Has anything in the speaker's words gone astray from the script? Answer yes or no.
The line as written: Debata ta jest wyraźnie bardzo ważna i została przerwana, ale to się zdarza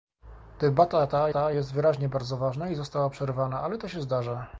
yes